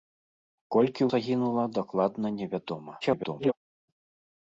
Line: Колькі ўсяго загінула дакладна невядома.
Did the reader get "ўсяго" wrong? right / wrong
wrong